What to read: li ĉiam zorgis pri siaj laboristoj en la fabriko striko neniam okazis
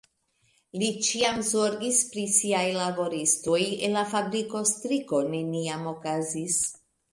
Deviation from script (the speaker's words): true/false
false